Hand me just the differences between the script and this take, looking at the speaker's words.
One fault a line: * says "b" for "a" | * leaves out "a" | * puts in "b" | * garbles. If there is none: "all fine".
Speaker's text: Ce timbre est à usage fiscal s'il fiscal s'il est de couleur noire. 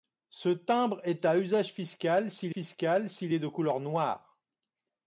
all fine